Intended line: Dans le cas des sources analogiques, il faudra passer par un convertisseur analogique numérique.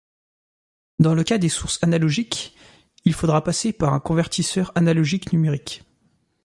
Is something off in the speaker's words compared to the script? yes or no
no